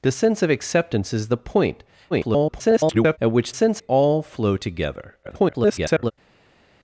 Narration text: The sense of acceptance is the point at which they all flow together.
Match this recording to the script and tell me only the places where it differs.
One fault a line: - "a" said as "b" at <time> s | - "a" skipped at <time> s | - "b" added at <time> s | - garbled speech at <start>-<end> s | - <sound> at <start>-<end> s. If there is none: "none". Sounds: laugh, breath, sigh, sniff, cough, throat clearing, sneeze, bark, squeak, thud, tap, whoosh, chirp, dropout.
- garbled speech at 2.1-3.2 s
- "they" said as "sense" at 3.5 s
- garbled speech at 5.2-6.1 s